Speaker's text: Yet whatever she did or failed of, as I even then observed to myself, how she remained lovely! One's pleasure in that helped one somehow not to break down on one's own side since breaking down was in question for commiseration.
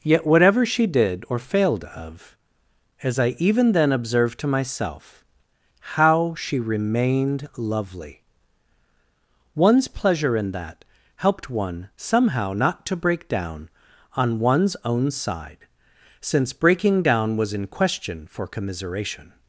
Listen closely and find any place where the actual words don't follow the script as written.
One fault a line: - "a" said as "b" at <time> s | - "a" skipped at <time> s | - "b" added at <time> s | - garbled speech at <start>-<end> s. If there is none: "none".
none